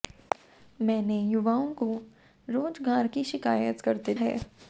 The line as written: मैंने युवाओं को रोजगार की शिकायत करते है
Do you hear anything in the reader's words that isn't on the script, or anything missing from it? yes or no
no